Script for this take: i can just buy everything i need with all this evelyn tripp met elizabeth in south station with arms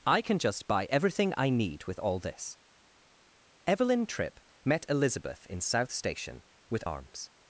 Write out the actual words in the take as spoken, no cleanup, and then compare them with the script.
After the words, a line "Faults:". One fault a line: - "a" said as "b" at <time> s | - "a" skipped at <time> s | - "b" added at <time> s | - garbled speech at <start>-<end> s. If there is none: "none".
i can just buy everything i need with all this evelyn tripp met elizabeth in south station with arms
Faults:
none